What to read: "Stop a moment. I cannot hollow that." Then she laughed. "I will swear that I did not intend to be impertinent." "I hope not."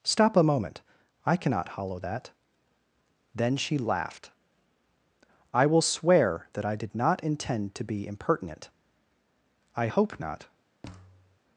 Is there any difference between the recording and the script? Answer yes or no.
no